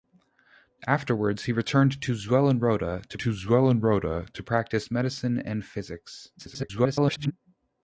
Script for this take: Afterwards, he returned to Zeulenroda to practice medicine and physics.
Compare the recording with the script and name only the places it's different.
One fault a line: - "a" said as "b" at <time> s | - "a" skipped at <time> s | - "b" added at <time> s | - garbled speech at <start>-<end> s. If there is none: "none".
- "to Zeulenroda to" added at 3.2 s
- garbled speech at 6.4-7.3 s